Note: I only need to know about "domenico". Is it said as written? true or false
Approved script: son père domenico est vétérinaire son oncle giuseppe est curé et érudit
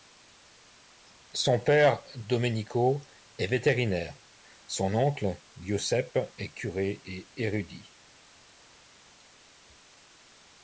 true